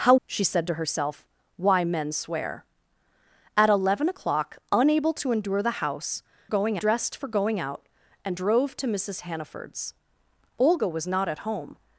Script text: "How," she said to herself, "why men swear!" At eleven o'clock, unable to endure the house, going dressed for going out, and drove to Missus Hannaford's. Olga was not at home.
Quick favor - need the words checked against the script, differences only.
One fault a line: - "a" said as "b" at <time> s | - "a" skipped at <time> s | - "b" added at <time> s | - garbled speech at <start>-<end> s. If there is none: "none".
none